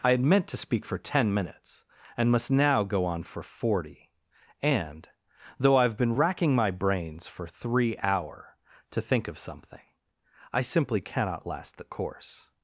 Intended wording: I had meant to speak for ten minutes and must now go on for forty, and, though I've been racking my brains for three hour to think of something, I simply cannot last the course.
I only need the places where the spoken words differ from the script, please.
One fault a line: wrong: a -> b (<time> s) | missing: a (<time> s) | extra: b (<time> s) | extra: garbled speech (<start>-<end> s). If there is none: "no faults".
no faults